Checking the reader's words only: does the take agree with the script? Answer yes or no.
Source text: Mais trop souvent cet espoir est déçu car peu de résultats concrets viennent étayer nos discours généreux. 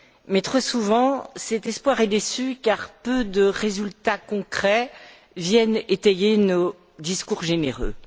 yes